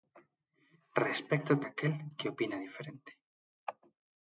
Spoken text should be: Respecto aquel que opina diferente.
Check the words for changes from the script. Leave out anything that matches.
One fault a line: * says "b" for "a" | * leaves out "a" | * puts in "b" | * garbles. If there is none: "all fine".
all fine